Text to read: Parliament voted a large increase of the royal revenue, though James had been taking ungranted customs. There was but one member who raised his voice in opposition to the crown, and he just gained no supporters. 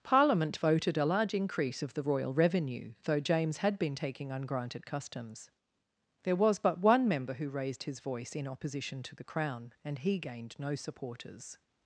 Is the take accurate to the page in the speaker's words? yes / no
no